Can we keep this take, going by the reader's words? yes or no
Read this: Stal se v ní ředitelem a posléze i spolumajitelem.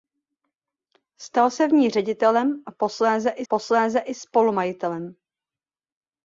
no